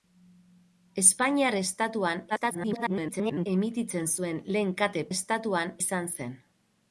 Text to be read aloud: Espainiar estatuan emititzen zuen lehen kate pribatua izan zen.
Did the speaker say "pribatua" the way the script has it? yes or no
no